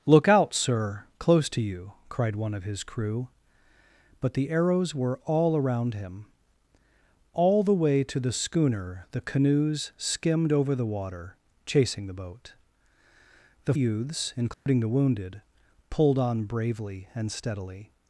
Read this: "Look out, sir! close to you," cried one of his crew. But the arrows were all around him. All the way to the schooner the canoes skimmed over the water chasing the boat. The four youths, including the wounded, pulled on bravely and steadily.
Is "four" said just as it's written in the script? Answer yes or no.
no